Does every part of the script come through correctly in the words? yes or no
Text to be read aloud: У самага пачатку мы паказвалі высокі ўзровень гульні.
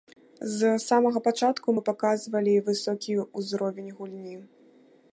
no